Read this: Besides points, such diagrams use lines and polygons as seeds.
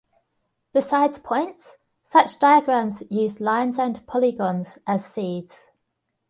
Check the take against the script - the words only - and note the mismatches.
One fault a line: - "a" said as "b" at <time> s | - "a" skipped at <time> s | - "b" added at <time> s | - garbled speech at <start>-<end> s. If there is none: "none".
none